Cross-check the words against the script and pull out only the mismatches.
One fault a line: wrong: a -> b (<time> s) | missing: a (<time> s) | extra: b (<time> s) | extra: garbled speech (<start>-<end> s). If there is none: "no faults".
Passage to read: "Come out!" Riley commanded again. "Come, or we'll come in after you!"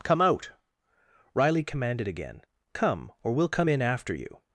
no faults